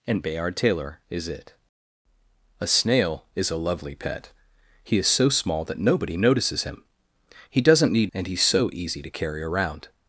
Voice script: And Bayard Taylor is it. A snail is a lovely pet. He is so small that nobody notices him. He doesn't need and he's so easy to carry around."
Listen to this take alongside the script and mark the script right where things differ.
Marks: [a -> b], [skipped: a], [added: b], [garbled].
And Bayard Taylor is it. A snail is a lovely pet. He is so small that nobody notices him. He doesn't need and he's so easy to carry around."